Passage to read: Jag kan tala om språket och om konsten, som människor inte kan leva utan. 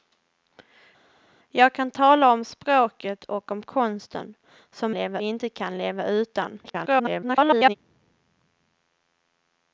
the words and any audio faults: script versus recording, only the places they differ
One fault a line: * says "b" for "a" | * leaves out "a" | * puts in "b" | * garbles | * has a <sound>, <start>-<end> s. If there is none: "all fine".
* says "leva" for "människor"
* garbles